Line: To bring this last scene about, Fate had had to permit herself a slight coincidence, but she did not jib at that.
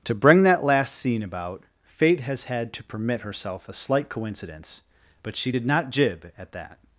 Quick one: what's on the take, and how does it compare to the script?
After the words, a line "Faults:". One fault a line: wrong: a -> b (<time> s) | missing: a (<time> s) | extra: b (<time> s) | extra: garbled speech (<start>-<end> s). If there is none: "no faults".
To bring that last scene about, Fate has had to permit herself a slight coincidence, but she did not jib at that.
Faults:
wrong: this -> that (0.4 s)
wrong: had -> has (2.2 s)